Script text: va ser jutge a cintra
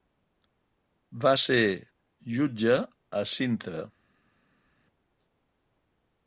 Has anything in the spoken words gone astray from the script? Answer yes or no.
no